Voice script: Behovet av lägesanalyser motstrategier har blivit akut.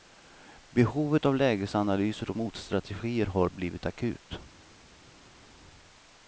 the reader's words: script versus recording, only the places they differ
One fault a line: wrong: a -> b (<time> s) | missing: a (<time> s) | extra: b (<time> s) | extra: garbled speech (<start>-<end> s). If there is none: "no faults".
no faults